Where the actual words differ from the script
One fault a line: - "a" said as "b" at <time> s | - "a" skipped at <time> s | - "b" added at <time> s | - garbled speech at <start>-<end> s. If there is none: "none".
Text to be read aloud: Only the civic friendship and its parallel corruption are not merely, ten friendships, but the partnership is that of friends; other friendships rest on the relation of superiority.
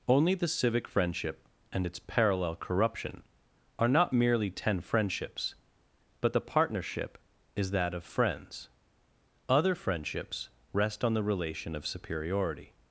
none